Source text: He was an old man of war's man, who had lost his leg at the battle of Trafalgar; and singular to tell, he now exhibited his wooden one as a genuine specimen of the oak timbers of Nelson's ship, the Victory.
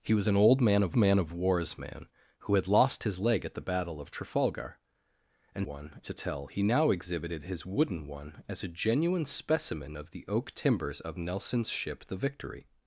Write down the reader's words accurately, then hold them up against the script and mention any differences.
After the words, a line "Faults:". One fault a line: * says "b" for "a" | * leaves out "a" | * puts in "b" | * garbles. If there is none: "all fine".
He was an old man of man of war's man, who had lost his leg at the battle of Trafalgar; and one to tell, he now exhibited his wooden one as a genuine specimen of the oak timbers of Nelson's ship, the Victory.
Faults:
* puts in "man of"
* says "one" for "singular"